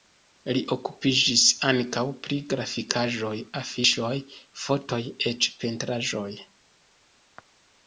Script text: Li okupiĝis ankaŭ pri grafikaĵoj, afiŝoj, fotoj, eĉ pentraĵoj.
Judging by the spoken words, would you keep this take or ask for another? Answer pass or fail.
pass